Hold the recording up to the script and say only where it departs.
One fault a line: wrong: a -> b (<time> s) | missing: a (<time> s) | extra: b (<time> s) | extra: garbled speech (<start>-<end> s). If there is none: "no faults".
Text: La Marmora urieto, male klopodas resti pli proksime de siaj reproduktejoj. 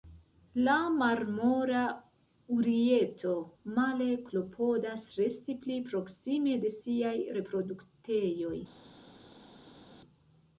no faults